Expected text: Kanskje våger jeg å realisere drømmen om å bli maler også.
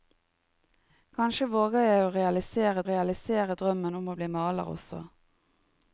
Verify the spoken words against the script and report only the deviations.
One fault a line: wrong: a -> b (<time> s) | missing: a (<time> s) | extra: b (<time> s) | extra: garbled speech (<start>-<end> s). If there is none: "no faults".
extra: realisere (2.9 s)